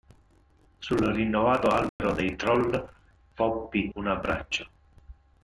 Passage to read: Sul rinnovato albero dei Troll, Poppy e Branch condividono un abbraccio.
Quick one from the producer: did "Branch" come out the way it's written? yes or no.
no